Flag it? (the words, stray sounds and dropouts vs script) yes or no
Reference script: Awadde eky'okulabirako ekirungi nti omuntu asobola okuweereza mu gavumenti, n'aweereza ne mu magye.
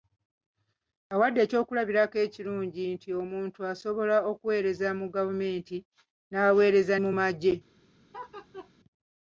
yes